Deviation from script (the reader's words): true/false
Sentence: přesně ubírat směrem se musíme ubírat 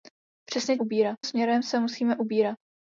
false